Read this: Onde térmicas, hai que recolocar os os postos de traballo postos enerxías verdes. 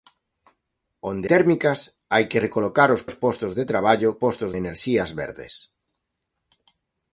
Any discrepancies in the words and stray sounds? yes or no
no